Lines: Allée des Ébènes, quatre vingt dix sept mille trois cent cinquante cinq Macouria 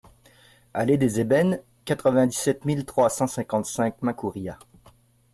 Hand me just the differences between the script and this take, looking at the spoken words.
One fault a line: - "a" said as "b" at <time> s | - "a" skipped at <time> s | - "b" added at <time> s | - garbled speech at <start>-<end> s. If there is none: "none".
none